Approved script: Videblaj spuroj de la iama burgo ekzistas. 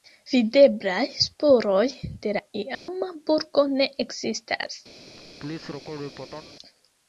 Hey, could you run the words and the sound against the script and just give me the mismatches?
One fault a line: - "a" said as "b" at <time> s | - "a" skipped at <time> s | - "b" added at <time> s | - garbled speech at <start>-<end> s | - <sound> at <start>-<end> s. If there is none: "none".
- dropout at 2.7-2.9 s
- "ne" added at 3.7 s
- laugh at 5.2-6.5 s